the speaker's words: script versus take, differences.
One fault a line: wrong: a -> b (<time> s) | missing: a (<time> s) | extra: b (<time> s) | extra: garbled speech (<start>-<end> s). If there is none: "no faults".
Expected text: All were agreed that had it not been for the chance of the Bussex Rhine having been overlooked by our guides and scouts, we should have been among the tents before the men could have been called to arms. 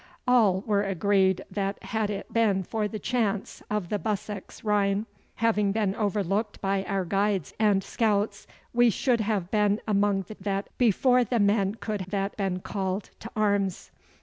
missing: not (2.3 s)
wrong: tents -> that (10.4 s)
wrong: have -> that (12.1 s)